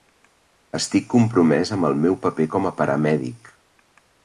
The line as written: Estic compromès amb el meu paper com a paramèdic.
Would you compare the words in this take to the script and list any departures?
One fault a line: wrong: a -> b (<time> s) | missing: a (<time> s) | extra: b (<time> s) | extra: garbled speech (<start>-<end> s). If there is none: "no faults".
no faults